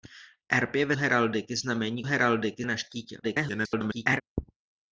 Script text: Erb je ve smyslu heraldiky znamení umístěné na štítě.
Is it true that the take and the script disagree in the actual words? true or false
true